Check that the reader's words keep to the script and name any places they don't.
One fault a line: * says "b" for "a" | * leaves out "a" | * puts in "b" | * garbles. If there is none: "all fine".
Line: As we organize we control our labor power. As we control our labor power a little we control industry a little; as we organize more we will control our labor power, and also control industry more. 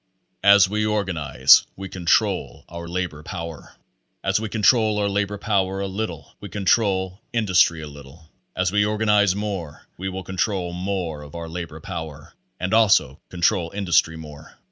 * puts in "more of"